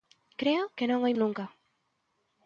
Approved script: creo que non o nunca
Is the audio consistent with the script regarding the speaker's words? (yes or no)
yes